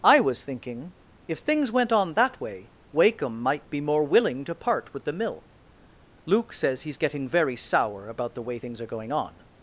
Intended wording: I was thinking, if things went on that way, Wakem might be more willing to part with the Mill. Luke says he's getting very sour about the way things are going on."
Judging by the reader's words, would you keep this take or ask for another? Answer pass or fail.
pass